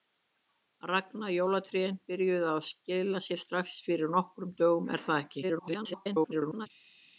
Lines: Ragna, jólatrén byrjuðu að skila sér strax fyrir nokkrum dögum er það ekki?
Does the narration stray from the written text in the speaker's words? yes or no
yes